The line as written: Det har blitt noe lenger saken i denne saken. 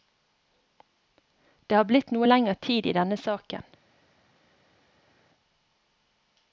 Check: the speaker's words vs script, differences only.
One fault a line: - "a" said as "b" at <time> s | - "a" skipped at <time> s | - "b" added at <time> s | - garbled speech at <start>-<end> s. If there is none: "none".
- "saken" said as "tid" at 2.5 s